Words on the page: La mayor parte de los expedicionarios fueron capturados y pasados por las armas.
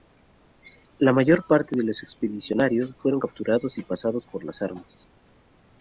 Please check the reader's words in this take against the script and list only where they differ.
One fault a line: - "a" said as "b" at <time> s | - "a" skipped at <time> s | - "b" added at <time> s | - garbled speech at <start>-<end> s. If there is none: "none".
none